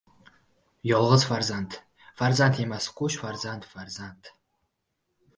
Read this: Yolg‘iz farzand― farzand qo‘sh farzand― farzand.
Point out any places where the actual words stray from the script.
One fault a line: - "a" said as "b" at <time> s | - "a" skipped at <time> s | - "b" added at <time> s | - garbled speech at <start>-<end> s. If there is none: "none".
- "emas" added at 2.6 s